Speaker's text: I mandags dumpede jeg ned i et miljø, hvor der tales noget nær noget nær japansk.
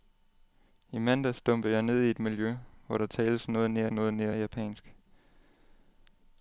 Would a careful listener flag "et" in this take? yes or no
no